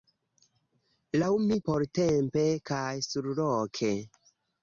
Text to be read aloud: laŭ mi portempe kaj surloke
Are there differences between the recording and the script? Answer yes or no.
no